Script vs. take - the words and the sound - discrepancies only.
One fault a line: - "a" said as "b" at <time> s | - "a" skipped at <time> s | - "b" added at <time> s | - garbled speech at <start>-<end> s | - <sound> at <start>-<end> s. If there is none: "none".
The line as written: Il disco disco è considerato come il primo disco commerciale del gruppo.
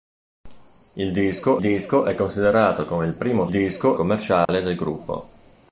- dropout at 4.5-4.5 s